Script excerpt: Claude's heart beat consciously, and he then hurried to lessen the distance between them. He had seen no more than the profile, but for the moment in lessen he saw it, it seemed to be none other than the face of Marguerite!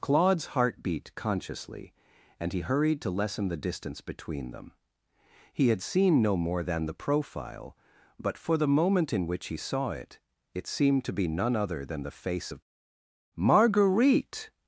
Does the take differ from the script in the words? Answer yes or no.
yes